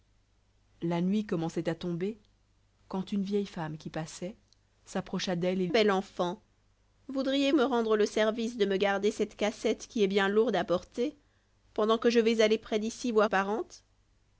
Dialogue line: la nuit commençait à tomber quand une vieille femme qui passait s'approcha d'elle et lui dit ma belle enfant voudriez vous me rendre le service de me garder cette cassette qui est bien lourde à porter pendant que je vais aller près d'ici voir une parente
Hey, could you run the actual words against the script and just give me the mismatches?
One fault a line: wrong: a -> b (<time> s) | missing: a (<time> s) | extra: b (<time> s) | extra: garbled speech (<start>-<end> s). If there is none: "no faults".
missing: lui dit ma (5.7 s)
missing: vous (7.5 s)
missing: une (13.3 s)